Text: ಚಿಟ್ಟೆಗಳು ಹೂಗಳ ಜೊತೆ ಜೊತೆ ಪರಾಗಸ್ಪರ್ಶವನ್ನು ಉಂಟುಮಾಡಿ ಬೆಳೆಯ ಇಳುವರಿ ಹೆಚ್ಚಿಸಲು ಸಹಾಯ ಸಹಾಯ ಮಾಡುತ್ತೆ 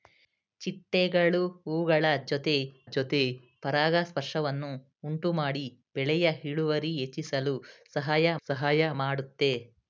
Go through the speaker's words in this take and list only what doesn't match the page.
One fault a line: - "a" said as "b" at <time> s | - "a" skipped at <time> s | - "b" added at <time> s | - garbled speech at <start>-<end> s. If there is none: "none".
none